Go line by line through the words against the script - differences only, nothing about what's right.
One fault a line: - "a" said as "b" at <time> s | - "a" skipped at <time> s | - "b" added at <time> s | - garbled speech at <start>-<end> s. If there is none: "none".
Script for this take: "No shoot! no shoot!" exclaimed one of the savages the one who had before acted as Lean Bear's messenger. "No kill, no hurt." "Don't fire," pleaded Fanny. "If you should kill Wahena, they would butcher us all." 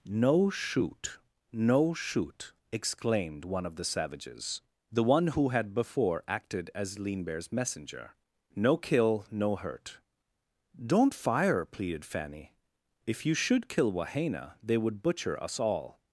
none